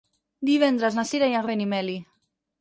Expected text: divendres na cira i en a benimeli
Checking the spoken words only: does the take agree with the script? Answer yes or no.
yes